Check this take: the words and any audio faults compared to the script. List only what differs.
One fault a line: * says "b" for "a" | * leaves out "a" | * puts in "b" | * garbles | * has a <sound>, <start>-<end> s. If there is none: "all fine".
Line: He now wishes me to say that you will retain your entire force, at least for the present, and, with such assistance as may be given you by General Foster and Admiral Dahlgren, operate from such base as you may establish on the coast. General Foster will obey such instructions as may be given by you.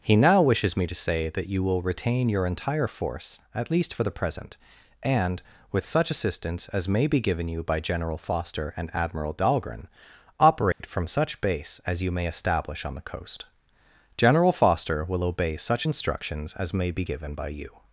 * has a dropout, 10.7-10.8 s